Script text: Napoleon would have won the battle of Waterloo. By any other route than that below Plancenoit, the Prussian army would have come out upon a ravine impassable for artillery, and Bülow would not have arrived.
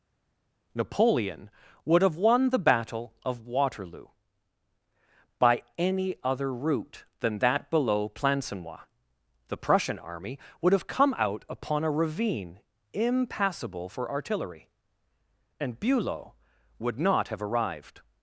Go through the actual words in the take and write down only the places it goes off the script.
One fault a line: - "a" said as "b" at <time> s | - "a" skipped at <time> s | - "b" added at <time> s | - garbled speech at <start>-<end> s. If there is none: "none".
none